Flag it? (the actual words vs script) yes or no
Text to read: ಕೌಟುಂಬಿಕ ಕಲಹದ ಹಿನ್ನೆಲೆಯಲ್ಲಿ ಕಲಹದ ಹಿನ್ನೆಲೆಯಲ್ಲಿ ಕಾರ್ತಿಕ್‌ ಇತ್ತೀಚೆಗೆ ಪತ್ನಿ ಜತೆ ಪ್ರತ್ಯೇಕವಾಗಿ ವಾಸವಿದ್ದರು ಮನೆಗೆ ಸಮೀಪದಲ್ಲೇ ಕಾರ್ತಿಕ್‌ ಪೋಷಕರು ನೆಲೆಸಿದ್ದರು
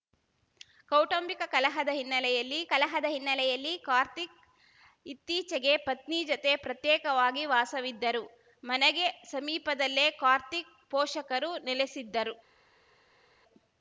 no